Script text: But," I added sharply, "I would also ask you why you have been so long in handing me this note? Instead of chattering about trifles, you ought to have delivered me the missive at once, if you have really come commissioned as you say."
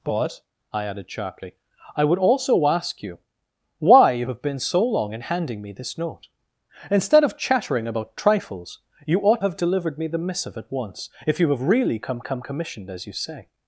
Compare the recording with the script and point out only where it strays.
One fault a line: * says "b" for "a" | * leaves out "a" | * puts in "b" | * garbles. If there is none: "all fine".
* leaves out "to"
* puts in "come"